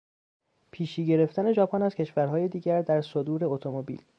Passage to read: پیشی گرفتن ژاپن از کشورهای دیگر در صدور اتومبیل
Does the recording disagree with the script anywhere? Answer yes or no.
no